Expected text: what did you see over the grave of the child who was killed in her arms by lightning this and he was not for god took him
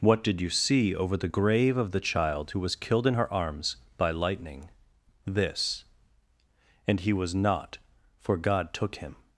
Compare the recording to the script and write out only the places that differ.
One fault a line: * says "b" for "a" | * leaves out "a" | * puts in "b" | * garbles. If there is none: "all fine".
all fine